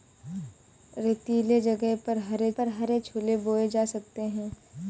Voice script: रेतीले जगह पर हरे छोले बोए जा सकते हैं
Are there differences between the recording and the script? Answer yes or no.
yes